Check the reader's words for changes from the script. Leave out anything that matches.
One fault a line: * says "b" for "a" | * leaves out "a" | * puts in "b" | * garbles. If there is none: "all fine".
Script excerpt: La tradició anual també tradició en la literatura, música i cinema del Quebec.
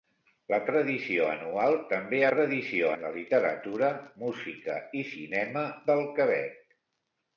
all fine